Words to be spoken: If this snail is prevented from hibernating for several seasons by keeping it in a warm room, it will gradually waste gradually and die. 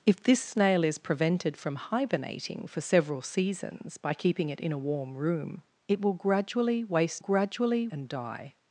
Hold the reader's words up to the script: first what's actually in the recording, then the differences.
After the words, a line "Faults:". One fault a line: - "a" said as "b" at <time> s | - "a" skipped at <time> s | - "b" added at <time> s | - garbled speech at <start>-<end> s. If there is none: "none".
If this snail is prevented from hibernating for several seasons by keeping it in a warm room, it will gradually waste gradually and die.
Faults:
none